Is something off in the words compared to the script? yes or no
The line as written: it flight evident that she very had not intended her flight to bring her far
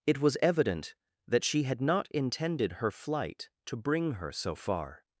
yes